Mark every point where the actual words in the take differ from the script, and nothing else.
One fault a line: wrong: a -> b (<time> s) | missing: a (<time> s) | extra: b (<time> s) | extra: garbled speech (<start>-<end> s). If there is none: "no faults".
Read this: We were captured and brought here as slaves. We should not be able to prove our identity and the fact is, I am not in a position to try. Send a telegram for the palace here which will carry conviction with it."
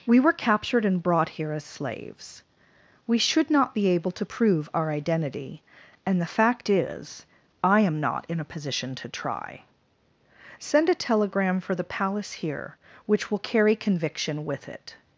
no faults